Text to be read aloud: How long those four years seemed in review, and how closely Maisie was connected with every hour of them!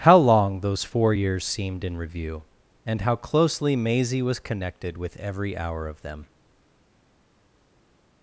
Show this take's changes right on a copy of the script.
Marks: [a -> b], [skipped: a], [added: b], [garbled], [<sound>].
How long those four years seemed in review, and how closely Maisie was connected with every hour of them!